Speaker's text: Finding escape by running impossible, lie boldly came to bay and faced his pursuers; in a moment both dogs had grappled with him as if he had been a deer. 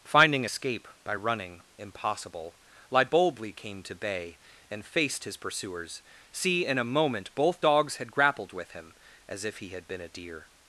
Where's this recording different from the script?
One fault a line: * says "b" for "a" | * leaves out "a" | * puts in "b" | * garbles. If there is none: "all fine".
* puts in "see"